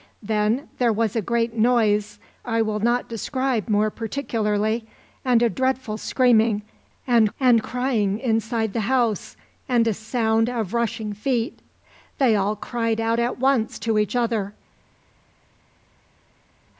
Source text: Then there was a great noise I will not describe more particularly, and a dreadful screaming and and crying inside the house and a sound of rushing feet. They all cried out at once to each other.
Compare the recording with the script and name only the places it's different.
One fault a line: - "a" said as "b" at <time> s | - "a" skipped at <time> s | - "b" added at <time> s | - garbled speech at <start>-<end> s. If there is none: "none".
none